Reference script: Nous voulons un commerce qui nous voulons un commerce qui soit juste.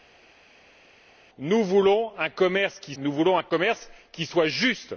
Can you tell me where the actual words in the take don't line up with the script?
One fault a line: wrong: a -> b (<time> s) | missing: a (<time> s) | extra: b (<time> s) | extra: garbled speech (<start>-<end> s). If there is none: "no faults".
no faults